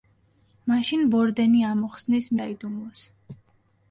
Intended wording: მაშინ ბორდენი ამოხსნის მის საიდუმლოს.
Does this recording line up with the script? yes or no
no